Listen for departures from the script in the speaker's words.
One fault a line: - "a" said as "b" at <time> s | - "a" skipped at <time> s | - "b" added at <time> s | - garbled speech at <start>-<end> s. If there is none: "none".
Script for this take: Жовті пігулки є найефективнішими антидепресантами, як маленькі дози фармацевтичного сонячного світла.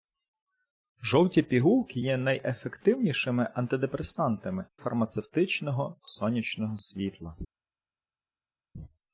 - "як маленькі дози" skipped at 4.6 s